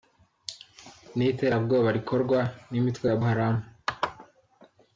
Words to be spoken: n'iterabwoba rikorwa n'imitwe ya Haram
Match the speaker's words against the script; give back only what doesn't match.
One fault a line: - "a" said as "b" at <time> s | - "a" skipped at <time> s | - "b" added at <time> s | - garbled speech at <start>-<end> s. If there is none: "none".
none